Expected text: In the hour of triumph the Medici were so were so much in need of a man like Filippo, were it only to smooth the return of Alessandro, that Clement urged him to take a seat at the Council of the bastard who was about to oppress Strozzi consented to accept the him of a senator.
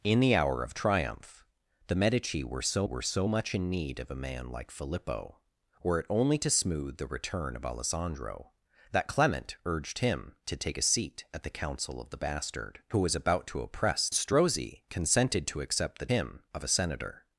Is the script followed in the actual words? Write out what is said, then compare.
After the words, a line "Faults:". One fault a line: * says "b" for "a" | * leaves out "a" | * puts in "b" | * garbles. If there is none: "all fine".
In the hour of triumph the Medici were so were so much in need of a man like Filippo, were it only to smooth the return of Alessandro, that Clement urged him to take a seat at the Council of the bastard who was about to oppress Strozzi consented to accept the him of a senator.
Faults:
all fine